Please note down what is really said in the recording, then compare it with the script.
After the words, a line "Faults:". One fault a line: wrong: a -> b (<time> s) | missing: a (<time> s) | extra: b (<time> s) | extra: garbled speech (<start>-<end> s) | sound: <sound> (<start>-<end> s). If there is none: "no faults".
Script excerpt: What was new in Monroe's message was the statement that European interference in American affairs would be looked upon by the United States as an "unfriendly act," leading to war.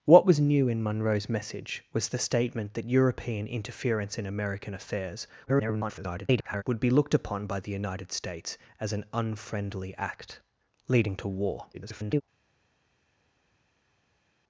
What was new in Monroe's message was the statement that European interference in American affairs [garbled] would be looked upon by the United States as an "unfriendly act," leading to war. [garbled]
Faults:
extra: garbled speech (5.5-6.6 s)
extra: garbled speech (11.7-12.2 s)